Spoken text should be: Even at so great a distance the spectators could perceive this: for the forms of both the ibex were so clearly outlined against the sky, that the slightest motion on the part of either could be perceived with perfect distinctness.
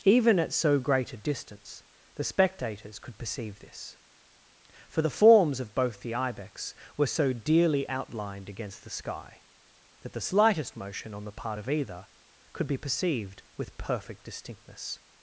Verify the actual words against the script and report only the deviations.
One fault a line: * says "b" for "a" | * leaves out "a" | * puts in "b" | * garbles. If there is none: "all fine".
* says "dearly" for "clearly"